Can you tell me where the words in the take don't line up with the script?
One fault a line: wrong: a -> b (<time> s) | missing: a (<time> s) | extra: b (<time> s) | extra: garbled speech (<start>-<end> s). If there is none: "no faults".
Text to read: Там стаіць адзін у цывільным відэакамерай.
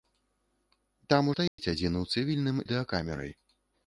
no faults